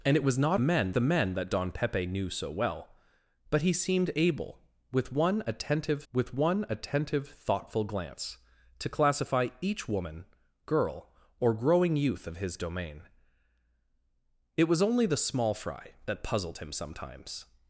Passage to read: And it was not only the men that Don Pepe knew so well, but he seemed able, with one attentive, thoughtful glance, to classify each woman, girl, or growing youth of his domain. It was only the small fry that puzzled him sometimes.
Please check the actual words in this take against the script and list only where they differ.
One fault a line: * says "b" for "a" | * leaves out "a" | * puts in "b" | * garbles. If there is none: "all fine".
* says "men" for "only"
* puts in "with one attentive"